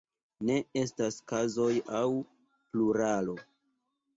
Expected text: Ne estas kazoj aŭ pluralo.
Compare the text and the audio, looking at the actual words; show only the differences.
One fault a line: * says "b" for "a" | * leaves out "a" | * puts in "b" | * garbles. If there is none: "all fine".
all fine